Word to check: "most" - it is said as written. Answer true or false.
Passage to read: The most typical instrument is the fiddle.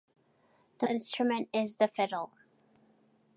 false